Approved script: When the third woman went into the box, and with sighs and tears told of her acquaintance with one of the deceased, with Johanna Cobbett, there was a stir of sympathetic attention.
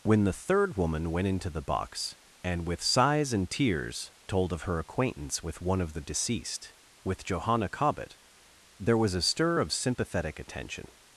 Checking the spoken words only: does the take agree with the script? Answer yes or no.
yes